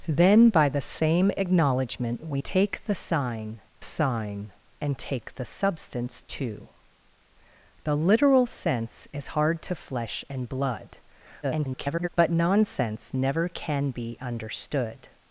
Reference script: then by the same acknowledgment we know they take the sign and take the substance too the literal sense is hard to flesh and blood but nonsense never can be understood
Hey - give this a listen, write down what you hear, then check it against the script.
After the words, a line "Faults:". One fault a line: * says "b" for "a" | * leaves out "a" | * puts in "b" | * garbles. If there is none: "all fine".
then by the same acknowledgment we take the sign sign and take the substance too the literal sense is hard to flesh and blood [garbled] but nonsense never can be understood
Faults:
* leaves out "know they"
* puts in "sign"
* garbles